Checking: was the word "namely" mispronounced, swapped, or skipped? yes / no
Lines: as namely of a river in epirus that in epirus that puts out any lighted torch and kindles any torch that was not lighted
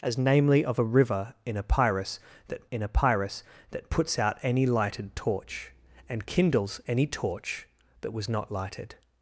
no